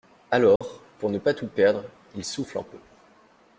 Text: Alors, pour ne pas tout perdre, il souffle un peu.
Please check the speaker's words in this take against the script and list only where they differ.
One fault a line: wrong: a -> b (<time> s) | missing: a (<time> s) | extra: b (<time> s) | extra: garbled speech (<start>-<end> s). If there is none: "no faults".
no faults